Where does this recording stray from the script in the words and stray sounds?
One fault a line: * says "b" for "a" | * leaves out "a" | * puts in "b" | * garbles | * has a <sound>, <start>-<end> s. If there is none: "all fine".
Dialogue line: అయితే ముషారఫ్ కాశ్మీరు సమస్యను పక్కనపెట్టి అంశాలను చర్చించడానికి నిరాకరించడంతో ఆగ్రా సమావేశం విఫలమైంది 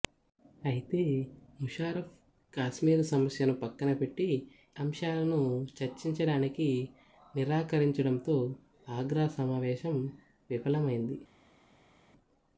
all fine